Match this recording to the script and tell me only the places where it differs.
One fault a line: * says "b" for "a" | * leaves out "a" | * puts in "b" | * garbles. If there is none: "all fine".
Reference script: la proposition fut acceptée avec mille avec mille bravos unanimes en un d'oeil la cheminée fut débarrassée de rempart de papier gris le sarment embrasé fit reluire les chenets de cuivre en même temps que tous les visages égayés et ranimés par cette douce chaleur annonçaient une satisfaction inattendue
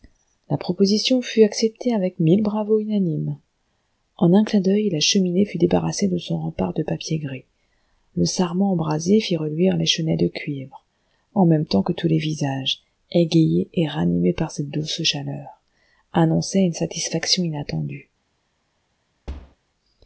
* leaves out "avec mille"
* puts in "clin"
* puts in "son"